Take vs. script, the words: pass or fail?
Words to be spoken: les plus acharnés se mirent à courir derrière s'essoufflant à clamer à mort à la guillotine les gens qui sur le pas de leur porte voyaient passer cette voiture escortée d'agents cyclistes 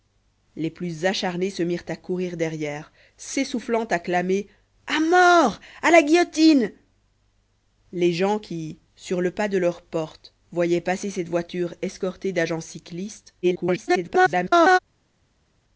fail